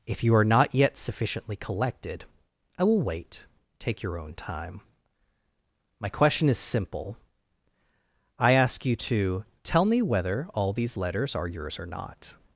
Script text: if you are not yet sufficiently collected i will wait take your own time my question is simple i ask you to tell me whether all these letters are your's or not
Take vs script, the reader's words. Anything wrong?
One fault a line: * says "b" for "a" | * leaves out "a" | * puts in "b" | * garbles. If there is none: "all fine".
all fine